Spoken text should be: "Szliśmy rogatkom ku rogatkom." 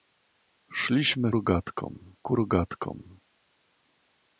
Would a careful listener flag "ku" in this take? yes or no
no